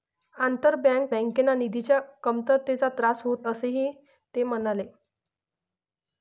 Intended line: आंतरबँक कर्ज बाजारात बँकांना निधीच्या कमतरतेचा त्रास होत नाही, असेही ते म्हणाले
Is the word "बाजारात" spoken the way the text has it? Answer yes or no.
no